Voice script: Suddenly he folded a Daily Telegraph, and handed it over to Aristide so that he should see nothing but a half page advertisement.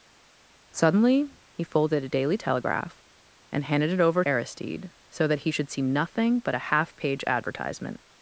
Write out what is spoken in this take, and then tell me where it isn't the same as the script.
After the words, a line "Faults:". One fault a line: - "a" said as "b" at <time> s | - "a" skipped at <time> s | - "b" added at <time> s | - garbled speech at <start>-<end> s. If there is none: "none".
Suddenly he folded a Daily Telegraph, and handed it over Aristide so that he should see nothing but a half page advertisement.
Faults:
- "to" skipped at 4.2 s